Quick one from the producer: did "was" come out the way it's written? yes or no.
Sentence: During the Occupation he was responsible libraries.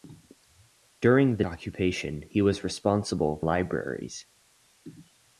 yes